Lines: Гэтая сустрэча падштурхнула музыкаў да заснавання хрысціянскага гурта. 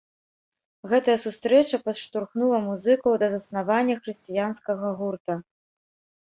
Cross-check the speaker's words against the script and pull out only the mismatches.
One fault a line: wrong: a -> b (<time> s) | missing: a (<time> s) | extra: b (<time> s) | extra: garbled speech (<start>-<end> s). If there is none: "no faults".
no faults